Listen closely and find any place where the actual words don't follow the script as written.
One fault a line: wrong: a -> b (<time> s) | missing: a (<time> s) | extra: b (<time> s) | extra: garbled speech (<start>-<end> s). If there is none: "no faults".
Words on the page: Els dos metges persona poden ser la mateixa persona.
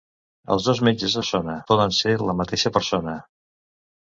no faults